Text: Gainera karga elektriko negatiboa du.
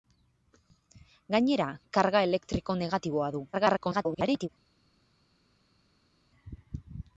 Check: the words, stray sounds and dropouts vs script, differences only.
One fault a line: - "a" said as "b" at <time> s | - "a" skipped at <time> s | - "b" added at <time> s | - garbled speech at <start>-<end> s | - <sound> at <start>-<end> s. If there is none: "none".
- garbled speech at 3.5-4.5 s